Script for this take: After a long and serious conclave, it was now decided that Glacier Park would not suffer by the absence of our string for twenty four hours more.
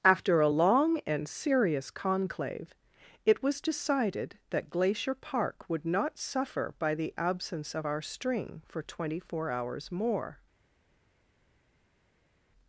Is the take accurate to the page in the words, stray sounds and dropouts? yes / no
no